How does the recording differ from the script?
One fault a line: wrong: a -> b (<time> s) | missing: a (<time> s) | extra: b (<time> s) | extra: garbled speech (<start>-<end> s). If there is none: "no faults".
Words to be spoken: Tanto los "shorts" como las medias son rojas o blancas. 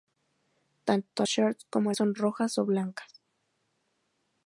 missing: los (1.3 s)
missing: las medias (1.9 s)